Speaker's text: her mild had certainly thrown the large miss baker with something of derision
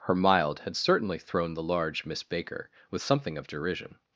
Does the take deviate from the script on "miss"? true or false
false